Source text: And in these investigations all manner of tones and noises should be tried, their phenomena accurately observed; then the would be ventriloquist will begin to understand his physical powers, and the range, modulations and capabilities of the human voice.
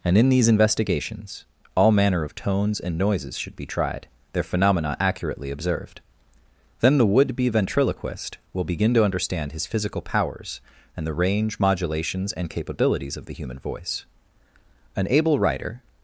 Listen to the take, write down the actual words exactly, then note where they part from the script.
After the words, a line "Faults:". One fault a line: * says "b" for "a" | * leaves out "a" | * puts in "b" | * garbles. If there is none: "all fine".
And in these investigations all manner of tones and noises should be tried, their phenomena accurately observed; then the would be ventriloquist will begin to understand his physical powers, and the range, modulations and capabilities of the human voice. An able writer
Faults:
* puts in "An able writer"